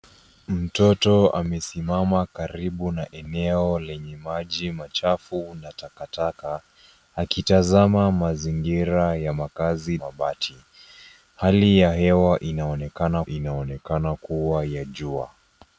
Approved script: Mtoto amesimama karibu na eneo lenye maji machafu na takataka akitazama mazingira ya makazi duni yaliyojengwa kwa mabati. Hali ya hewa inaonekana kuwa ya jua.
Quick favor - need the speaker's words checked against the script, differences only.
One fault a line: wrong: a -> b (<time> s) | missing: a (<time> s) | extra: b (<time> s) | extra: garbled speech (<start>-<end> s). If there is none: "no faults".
missing: duni yaliyojengwa kwa (10.0 s)
extra: inaonekana (13.3 s)